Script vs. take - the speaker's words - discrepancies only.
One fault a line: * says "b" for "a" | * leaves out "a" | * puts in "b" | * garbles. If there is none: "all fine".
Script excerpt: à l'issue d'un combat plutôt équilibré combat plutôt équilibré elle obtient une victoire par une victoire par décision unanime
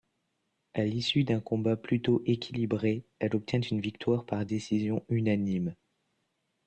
* leaves out "combat plutôt équilibré"
* leaves out "une victoire par"